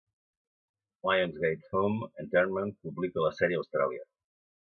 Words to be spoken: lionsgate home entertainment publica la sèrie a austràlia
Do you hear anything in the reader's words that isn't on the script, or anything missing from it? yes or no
no